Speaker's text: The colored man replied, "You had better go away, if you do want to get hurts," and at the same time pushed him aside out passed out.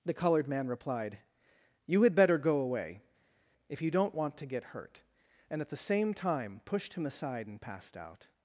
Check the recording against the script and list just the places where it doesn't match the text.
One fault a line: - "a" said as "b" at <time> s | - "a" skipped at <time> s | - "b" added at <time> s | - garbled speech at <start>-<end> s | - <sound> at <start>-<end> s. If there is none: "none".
- "do" said as "don't" at 3.9 s
- "hurts" said as "hurt" at 4.7 s
- "out" said as "and" at 7.5 s